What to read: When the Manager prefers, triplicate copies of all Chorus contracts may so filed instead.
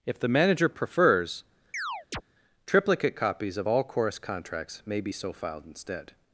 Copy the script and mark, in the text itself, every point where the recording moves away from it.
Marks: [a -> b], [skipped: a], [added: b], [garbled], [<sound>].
[When -> If] the Manager prefers, [chirp] triplicate copies of all Chorus contracts may [added: be] so filed instead.